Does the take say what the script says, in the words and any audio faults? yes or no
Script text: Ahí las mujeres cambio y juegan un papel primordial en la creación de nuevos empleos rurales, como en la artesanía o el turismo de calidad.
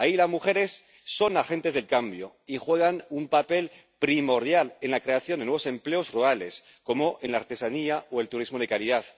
no